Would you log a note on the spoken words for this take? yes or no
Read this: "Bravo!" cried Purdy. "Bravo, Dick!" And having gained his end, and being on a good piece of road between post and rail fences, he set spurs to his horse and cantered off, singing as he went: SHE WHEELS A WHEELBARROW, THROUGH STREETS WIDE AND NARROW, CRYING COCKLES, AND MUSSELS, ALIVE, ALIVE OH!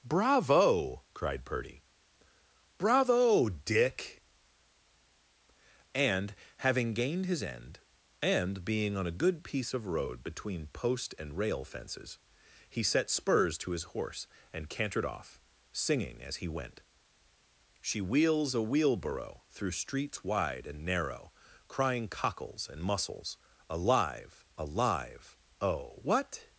yes